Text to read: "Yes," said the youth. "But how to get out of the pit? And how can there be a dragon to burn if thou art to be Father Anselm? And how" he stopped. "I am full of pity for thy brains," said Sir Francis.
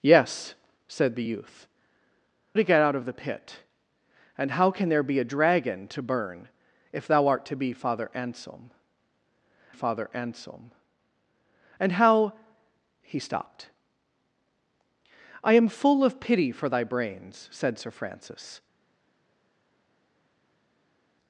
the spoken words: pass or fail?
fail